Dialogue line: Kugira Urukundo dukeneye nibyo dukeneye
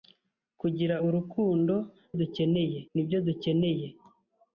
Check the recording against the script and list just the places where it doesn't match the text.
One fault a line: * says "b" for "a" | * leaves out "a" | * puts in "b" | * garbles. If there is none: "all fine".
all fine